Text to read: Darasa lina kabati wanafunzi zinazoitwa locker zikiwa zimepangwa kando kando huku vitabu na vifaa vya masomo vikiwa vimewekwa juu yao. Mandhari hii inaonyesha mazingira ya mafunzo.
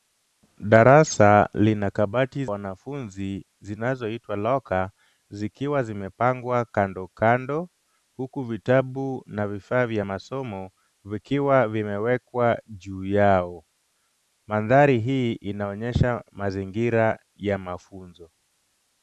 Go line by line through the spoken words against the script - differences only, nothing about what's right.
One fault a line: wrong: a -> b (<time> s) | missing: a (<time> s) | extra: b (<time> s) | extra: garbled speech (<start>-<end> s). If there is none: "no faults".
no faults